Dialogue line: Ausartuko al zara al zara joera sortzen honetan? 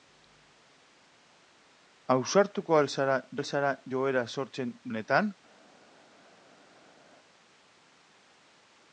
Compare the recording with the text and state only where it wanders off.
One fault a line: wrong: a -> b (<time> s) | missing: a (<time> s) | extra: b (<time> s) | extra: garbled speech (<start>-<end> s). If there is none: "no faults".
no faults